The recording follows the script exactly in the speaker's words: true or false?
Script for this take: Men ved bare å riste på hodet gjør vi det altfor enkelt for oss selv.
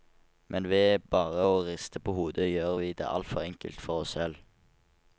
true